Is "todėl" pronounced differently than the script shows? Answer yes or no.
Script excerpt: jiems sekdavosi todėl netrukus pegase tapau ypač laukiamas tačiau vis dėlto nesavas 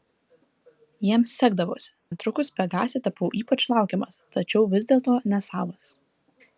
yes